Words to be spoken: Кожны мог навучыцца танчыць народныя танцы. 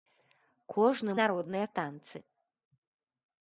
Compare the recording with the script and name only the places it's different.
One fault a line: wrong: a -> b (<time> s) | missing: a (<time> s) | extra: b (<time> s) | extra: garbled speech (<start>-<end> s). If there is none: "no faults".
missing: мог навучыцца танчыць (1.1 s)